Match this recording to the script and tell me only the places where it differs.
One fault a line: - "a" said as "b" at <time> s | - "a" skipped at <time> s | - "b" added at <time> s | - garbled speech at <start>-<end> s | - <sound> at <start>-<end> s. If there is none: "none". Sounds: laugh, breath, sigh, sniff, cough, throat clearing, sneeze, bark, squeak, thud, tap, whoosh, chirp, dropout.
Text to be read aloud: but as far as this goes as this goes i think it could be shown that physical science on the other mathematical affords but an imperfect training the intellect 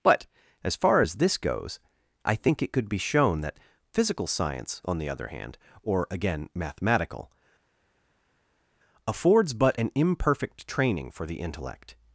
- "as this goes" skipped at 1.8 s
- "hand or again" added at 5.3 s
- "for" added at 11.1 s